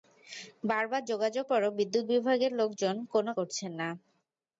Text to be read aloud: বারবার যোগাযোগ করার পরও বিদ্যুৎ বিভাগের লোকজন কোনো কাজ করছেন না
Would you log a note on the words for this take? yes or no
yes